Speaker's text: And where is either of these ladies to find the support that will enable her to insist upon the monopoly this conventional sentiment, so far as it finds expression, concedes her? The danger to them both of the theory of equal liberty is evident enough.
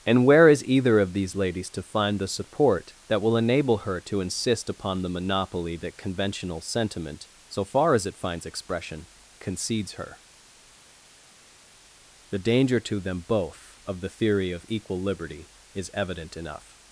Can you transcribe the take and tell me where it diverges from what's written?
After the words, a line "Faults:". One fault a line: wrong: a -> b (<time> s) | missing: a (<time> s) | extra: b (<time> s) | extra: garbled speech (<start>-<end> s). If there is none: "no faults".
And where is either of these ladies to find the support that will enable her to insist upon the monopoly that conventional sentiment, so far as it finds expression, concedes her? The danger to them both of the theory of equal liberty is evident enough.
Faults:
wrong: this -> that (5.8 s)